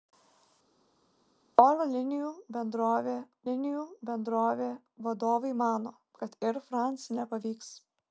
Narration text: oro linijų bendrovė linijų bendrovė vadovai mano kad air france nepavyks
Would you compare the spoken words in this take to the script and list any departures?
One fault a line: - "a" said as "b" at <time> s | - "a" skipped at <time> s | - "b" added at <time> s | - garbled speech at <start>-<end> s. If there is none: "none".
none